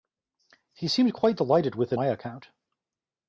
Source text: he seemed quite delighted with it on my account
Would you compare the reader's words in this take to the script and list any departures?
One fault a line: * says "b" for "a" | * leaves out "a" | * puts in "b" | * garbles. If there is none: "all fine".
* leaves out "on"